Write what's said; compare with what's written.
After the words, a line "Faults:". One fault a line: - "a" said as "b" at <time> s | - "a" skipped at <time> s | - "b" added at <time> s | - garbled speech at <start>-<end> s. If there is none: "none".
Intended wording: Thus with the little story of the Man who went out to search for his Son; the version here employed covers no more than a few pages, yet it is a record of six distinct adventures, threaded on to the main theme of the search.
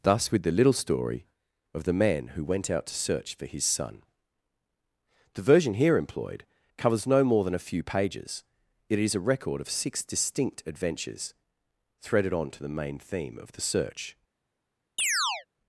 Thus with the little story of the Man who went out to search for his Son; the version here employed covers no more than a few pages, it is a record of six distinct adventures, threaded on to the main theme of the search.
Faults:
- "yet" skipped at 8.4 s